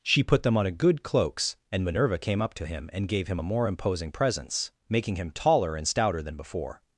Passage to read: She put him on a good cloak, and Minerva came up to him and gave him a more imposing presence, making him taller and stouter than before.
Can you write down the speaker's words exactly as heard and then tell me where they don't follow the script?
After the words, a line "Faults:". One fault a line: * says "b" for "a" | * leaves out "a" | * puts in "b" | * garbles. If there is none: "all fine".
She put them on a good cloaks, and Minerva came up to him and gave him a more imposing presence, making him taller and stouter than before.
Faults:
* says "them" for "him"
* says "cloaks" for "cloak"